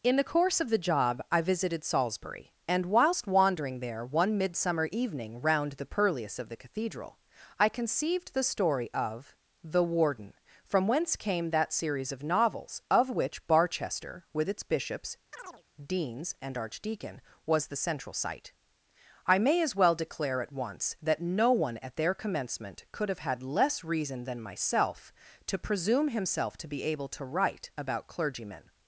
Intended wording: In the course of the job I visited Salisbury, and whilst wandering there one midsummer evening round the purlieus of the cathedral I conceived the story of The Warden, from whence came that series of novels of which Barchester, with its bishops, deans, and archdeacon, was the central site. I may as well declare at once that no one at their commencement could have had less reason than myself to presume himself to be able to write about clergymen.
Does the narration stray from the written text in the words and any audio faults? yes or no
yes